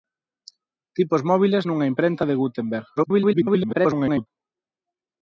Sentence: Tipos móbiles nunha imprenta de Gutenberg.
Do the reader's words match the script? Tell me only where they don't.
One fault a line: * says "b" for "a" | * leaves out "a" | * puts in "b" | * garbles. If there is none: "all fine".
* garbles